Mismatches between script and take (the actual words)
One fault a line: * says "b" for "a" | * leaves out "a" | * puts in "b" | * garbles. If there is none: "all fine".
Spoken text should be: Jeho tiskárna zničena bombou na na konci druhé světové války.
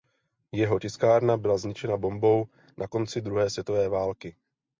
* puts in "byla"
* leaves out "na"